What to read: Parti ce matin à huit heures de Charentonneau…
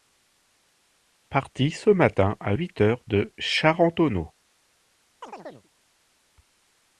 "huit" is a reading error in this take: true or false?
false